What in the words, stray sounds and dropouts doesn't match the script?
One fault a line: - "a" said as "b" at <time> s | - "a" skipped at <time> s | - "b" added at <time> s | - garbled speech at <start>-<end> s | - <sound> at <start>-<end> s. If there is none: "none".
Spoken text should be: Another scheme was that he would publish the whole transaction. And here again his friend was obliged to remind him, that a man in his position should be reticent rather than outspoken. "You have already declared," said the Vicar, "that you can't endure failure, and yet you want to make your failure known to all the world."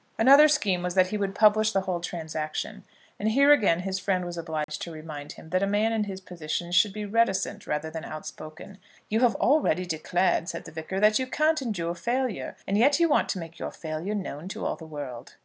- dropout at 4.6-4.7 s